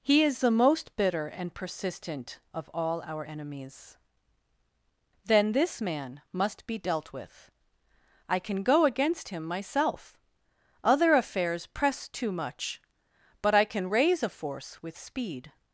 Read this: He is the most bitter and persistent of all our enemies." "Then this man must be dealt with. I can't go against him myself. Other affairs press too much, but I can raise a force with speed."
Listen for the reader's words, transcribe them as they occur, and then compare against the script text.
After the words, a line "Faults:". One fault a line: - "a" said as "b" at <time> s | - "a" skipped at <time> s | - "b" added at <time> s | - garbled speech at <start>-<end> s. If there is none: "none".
He is the most bitter and persistent of all our enemies." "Then this man must be dealt with. I can go against him myself. Other affairs press too much, but I can raise a force with speed."
Faults:
- "can't" said as "can" at 8.4 s